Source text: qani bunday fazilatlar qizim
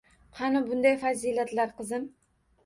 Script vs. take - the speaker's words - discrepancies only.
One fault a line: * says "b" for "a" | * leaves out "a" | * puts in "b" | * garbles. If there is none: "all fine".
all fine